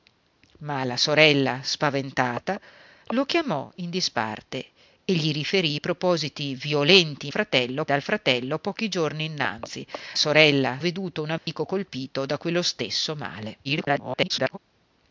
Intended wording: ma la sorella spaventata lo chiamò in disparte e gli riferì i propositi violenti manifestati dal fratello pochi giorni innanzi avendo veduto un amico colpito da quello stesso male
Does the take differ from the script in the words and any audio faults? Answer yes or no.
yes